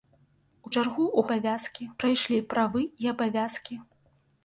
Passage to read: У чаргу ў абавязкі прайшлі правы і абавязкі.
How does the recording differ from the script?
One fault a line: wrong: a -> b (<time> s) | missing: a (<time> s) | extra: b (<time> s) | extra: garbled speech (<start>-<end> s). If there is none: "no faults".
no faults